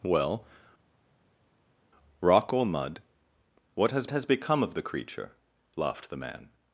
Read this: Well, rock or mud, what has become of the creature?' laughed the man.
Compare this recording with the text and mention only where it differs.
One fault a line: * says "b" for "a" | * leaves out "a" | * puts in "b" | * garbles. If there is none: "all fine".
* puts in "has"